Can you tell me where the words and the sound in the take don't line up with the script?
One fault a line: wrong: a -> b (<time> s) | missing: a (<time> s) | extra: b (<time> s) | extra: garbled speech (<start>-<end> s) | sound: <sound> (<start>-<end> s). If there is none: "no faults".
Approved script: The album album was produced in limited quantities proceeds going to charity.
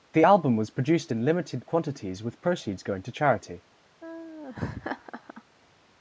missing: album (0.6 s)
extra: with (2.2 s)
sound: laugh (4.0-5.4 s)